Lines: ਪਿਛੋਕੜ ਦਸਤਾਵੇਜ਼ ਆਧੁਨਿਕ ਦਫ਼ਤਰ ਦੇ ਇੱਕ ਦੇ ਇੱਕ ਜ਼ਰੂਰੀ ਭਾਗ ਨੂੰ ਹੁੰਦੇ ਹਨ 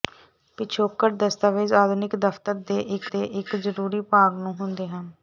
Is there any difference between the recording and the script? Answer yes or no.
no